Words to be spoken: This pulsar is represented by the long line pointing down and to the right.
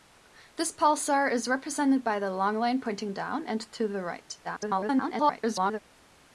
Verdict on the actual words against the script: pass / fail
fail